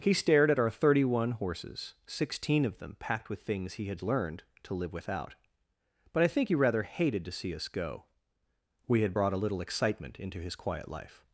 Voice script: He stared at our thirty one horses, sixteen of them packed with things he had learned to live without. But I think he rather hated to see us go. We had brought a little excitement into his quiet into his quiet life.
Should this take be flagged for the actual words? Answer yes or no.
yes